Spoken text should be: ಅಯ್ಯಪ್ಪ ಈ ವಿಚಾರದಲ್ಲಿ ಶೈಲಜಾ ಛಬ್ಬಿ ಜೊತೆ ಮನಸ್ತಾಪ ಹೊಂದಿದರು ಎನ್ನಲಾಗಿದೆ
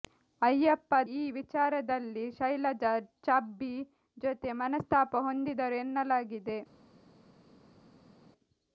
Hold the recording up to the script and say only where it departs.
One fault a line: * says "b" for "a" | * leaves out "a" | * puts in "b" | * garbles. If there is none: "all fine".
all fine